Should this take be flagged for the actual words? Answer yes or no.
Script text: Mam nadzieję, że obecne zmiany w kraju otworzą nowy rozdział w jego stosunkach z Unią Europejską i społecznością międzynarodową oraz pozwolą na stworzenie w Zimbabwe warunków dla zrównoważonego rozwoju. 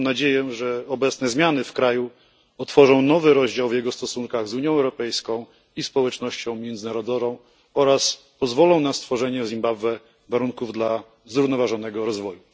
no